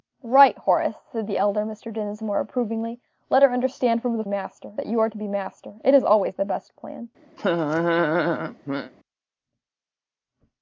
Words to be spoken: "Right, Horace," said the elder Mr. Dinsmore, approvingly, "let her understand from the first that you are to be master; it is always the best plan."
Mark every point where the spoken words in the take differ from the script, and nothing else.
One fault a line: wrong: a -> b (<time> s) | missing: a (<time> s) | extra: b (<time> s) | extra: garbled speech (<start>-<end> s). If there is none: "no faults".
wrong: first -> master (4.3 s)